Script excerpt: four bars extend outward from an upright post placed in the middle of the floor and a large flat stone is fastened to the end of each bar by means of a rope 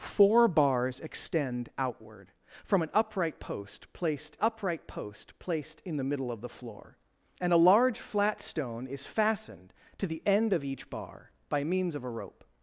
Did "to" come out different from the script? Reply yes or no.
no